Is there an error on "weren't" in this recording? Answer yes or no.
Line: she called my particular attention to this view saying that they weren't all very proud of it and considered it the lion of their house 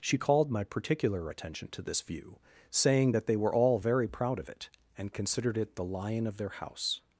yes